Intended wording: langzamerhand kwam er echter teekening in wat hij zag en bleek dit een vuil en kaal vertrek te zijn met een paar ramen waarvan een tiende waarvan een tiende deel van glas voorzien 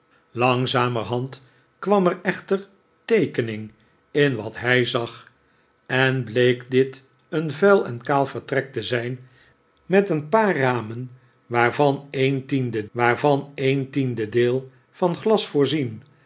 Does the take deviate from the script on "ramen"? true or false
false